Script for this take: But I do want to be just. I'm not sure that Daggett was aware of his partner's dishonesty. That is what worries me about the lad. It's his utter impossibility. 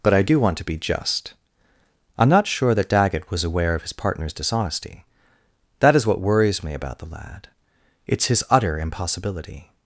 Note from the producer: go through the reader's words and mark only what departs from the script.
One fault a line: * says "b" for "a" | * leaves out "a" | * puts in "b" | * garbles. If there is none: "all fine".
all fine